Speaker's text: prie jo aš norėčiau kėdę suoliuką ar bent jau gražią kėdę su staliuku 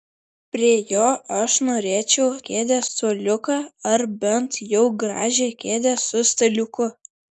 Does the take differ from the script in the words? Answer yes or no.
no